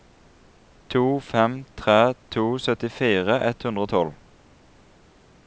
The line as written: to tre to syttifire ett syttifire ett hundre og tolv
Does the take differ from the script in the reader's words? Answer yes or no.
yes